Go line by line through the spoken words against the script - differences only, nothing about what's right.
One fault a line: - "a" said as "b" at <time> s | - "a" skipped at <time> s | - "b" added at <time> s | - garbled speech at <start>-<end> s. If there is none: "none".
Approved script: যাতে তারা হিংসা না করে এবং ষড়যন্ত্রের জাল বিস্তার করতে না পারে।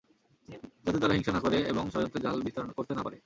none